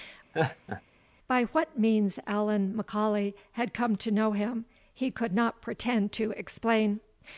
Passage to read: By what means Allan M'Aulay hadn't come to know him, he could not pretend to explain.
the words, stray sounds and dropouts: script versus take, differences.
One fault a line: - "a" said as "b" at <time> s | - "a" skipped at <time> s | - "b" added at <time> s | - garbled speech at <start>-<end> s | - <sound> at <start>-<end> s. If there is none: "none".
- laugh at 0.3-0.8 s
- "hadn't" said as "had" at 3.5 s